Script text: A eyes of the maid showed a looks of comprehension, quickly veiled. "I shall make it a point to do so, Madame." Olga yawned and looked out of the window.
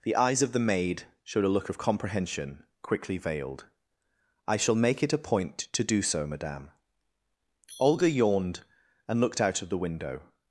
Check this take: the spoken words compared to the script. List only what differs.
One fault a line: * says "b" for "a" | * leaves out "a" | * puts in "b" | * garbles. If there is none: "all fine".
* says "The" for "A"
* says "look" for "looks"